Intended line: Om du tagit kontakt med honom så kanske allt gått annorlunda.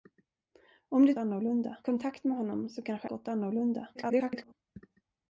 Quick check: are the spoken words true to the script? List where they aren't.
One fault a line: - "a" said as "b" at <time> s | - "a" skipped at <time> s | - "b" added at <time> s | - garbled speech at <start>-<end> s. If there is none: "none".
- "tagit" said as "annorlunda" at 1.2 s
- "allt" skipped at 3.1 s
- garbled speech at 3.9-4.5 s